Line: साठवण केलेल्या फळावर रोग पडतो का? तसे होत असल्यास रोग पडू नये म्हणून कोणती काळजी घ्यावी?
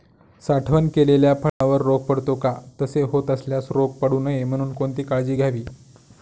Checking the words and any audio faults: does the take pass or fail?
fail